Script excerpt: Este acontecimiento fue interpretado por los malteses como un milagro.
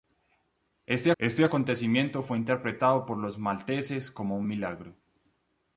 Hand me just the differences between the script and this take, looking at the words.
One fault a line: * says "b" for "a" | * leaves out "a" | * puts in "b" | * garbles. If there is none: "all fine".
* puts in "este"